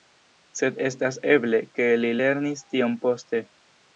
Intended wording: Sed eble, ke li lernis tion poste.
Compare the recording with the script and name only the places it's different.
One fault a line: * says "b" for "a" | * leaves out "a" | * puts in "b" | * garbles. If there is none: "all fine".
* puts in "estas"